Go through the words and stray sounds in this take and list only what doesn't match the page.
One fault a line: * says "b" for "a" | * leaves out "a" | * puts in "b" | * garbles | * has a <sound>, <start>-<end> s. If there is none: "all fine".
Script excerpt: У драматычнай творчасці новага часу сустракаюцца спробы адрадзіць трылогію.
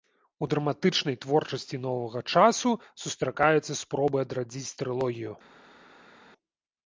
all fine